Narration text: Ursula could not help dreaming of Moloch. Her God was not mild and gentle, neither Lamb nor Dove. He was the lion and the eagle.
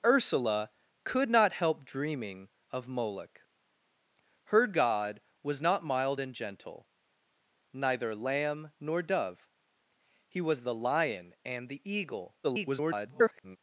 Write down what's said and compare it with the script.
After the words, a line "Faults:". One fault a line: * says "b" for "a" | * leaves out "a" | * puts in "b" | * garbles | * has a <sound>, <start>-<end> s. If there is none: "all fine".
Ursula could not help dreaming of Moloch. Her God was not mild and gentle, neither Lamb nor Dove. He was the lion and the eagle. [garbled]
Faults:
* garbles